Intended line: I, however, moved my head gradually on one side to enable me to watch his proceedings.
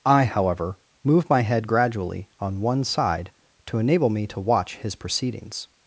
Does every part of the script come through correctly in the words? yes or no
no